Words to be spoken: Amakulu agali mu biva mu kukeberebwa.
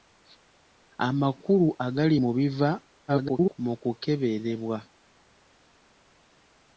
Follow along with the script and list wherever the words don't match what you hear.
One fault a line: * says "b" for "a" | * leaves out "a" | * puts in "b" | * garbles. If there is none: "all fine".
* garbles